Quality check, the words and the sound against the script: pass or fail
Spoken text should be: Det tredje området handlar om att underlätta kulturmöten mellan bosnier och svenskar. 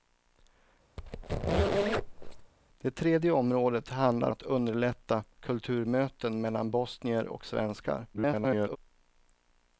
fail